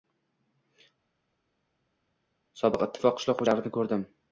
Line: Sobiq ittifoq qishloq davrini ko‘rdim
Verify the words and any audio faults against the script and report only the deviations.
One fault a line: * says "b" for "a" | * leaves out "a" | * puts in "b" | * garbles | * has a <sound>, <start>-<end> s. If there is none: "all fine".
all fine